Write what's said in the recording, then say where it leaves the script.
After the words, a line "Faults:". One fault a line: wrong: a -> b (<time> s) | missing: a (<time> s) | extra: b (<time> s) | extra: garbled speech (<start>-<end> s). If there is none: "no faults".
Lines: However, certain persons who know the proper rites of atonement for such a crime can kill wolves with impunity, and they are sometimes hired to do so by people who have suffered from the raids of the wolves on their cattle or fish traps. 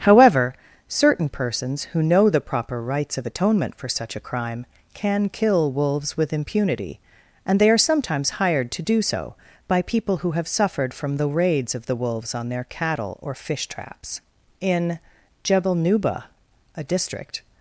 However, certain persons who know the proper rites of atonement for such a crime can kill wolves with impunity, and they are sometimes hired to do so by people who have suffered from the raids of the wolves on their cattle or fish traps. In Jebel Nuba, a district
Faults:
extra: In Jebel Nuba a district (14.6 s)